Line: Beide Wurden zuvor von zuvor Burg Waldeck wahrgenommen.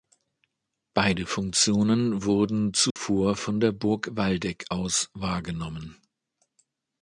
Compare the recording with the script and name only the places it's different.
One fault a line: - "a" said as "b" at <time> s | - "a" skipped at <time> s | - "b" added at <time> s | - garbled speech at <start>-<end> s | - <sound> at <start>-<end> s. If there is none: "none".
- "Funktionen" added at 1.3 s
- dropout at 2.9-3.0 s
- "zuvor" said as "der" at 3.6 s
- "aus" added at 4.7 s